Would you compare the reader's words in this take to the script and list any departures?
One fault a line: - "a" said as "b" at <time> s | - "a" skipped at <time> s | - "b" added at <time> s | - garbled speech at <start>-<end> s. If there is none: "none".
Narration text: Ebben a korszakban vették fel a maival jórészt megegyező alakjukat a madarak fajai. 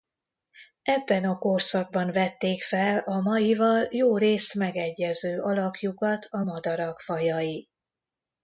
none